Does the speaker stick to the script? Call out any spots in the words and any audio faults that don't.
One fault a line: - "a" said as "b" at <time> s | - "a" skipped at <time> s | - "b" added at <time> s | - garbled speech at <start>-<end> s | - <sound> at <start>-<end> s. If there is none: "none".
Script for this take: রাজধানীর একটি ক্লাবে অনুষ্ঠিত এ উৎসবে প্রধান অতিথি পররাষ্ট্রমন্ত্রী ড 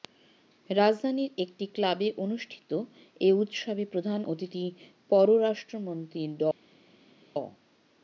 none